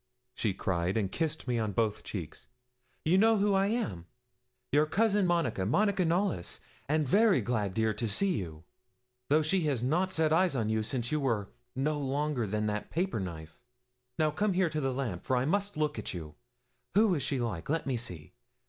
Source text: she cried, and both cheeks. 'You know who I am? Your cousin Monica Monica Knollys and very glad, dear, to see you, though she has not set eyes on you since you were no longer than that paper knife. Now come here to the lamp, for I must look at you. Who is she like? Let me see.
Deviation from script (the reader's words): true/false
true